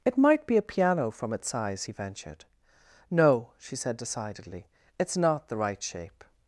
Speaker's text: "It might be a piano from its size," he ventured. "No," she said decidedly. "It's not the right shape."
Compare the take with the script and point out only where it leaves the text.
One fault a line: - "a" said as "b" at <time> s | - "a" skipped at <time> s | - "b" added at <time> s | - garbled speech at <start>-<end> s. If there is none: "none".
none